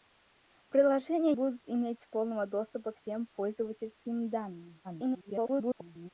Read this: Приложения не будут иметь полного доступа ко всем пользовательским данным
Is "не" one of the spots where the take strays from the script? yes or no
yes